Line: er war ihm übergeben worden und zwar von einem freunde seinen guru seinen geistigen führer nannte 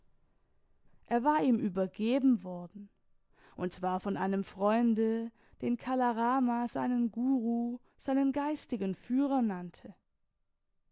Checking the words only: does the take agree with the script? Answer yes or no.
no